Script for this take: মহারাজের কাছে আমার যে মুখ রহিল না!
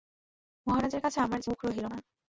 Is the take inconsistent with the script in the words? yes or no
no